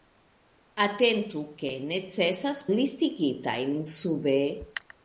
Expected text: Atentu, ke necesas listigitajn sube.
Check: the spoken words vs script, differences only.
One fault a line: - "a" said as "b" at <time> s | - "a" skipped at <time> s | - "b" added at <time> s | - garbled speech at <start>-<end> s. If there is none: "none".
none